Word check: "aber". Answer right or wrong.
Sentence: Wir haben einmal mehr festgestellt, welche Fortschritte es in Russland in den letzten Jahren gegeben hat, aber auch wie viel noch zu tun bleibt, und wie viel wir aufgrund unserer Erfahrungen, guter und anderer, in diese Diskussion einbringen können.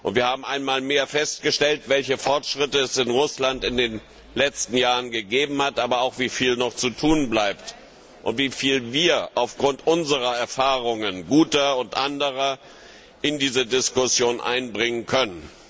right